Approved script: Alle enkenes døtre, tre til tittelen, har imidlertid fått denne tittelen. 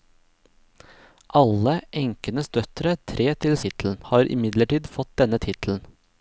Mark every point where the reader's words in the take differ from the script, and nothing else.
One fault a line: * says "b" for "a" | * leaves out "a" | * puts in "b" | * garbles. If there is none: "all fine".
all fine